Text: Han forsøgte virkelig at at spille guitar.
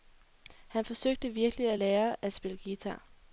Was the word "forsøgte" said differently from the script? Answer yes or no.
no